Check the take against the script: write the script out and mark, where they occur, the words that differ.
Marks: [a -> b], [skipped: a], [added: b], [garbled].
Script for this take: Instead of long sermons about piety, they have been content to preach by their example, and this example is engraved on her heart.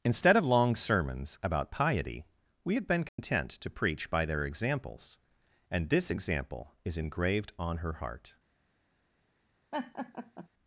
Instead of long sermons about piety, [they -> we] have been content to preach by their [example, -> examples] and this example is engraved on her heart.